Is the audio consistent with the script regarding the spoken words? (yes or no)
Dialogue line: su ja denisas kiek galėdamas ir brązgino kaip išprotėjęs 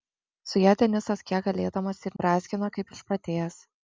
yes